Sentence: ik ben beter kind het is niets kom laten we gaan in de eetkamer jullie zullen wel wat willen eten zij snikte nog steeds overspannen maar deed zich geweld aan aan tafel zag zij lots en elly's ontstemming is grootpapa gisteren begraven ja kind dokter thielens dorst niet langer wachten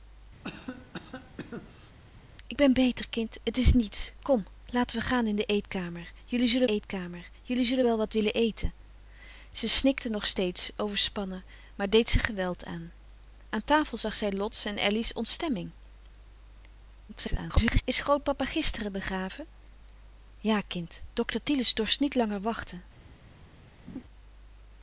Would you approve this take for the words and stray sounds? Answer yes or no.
no